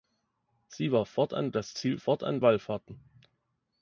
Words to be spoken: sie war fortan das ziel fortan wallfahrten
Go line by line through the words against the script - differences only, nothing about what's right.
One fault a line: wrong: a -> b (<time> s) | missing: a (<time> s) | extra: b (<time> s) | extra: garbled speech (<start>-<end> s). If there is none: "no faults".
no faults